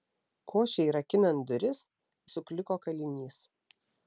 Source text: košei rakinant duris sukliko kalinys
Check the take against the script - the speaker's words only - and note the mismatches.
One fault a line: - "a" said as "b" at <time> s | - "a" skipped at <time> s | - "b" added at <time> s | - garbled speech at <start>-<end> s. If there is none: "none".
none